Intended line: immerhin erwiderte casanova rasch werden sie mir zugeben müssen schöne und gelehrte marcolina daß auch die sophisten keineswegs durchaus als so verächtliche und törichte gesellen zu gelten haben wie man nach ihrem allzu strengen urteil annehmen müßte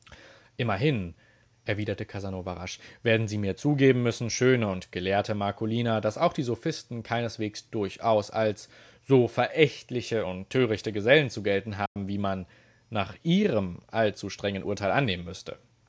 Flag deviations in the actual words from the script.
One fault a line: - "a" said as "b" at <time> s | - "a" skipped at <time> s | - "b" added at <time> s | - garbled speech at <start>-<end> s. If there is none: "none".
none